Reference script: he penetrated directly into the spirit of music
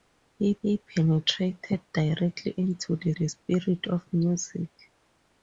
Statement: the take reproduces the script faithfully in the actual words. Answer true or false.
false